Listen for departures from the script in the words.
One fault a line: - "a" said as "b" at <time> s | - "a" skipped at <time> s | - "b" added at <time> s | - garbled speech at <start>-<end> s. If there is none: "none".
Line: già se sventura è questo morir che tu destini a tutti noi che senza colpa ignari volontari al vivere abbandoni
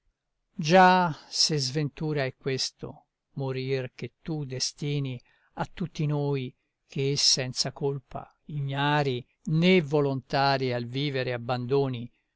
- "né" added at 9.5 s